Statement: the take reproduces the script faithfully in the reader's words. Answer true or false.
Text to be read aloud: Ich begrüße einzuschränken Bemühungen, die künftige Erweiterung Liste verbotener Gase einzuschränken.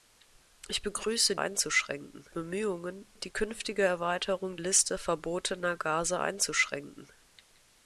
true